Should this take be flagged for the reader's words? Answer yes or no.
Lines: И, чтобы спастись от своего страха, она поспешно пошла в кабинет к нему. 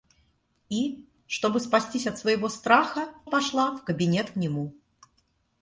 yes